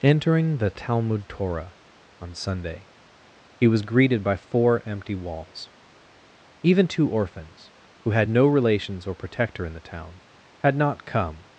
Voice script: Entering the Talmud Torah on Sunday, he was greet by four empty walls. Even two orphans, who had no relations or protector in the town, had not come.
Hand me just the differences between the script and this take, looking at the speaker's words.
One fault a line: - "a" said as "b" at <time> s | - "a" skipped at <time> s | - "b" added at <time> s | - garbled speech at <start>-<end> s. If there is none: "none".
- "greet" said as "greeted" at 3.8 s